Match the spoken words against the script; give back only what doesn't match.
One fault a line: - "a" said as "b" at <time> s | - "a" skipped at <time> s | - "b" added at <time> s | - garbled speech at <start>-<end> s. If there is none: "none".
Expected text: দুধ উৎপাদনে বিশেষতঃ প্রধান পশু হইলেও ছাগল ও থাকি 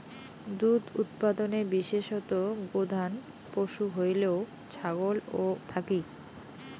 none